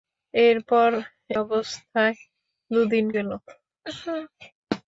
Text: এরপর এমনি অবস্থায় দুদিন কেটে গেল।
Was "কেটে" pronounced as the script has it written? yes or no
no